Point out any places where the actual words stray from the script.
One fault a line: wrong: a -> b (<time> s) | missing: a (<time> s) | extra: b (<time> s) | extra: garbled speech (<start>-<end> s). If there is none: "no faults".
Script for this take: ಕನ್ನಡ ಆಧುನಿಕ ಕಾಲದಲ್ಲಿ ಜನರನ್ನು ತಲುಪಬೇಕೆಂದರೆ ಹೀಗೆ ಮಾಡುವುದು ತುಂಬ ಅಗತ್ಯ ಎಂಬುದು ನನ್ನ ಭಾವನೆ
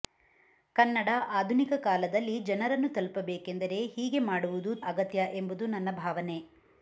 missing: ತುಂಬ (4.7 s)